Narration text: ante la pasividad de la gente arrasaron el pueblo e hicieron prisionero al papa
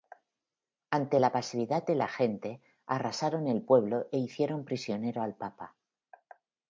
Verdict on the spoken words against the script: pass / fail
pass